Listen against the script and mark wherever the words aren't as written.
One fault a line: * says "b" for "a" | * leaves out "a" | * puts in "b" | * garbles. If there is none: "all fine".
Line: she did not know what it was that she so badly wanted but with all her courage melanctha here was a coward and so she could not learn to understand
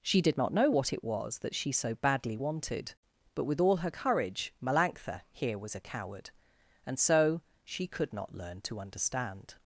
all fine